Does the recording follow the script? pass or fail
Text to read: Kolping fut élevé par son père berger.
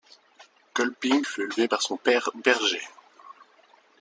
pass